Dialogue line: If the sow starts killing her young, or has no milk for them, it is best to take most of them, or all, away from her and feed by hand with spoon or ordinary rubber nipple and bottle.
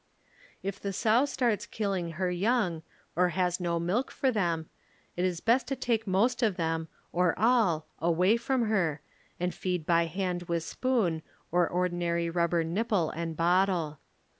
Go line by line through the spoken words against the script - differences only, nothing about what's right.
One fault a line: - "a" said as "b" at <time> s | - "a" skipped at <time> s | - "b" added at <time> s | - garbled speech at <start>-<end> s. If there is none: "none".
none